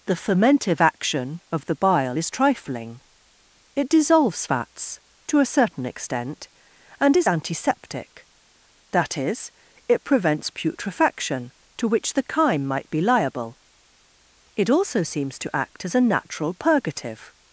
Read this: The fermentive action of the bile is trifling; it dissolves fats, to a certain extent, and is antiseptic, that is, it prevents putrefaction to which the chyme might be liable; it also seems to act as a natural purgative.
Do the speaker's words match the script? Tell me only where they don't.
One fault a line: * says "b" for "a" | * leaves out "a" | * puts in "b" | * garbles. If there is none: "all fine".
all fine